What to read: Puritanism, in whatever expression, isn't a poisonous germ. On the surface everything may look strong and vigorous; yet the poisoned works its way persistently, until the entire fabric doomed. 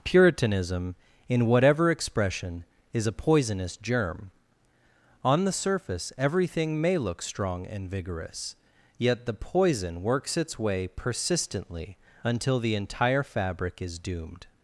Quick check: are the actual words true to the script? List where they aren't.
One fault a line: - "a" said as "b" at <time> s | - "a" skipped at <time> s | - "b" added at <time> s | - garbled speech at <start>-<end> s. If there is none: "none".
- "isn't" said as "is" at 2.9 s
- "poisoned" said as "poison" at 9.3 s
- "is" added at 13.8 s